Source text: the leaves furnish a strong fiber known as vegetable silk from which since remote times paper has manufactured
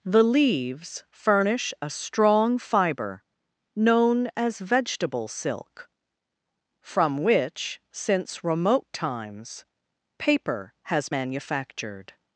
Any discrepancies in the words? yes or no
no